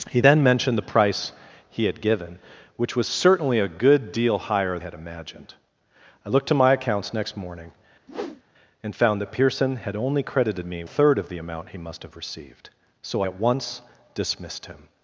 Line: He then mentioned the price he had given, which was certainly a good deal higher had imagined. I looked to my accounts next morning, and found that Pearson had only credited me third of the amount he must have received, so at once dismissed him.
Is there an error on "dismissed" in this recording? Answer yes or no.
no